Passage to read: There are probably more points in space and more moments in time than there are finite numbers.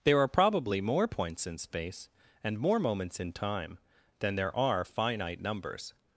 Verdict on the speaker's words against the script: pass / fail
pass